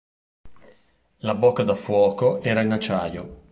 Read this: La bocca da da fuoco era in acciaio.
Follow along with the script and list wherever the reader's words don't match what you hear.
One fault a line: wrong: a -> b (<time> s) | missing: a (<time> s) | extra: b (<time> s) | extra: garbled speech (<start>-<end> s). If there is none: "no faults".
missing: da (1.8 s)